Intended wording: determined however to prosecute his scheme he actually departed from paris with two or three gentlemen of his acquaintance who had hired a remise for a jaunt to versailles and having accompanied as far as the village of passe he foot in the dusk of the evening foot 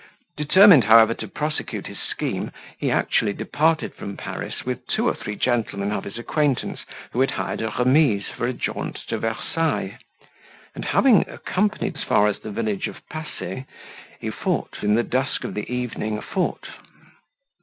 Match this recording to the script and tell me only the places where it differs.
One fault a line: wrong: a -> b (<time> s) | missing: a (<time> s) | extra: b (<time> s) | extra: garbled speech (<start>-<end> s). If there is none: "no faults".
no faults